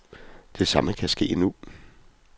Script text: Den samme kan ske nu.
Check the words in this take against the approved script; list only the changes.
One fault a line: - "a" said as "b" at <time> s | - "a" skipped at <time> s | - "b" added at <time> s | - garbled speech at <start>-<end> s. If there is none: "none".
- "Den" said as "Det" at 0.6 s